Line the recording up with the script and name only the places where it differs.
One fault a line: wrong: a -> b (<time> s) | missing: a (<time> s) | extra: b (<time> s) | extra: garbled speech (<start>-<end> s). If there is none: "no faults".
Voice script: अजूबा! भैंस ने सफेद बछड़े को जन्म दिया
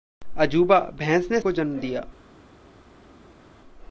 missing: सफेद बछड़े (1.4 s)